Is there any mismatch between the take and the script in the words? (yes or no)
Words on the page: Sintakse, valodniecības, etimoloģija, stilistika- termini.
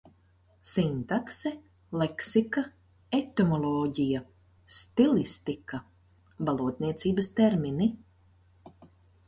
yes